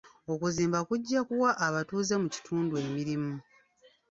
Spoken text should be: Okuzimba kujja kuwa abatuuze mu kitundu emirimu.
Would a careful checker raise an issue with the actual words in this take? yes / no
no